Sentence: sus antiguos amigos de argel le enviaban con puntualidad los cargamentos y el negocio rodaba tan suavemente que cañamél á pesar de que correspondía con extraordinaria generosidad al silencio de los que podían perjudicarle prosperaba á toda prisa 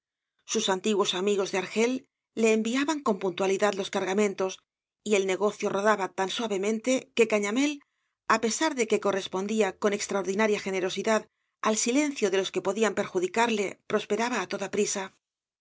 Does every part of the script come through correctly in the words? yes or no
yes